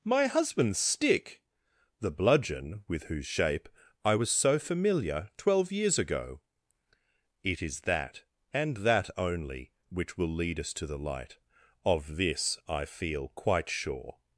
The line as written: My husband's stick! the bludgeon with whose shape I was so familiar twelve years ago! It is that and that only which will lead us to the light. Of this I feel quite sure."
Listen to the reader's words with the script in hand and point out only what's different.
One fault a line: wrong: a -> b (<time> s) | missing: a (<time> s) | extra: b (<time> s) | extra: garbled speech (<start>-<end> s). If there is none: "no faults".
no faults